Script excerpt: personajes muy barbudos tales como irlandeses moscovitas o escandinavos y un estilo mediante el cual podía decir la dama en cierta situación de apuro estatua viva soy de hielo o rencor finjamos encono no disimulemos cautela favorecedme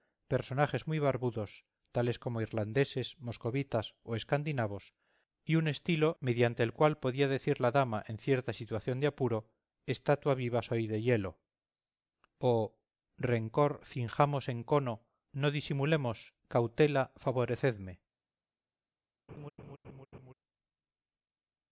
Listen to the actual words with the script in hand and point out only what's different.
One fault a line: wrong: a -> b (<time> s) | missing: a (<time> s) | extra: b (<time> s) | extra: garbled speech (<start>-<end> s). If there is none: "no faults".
no faults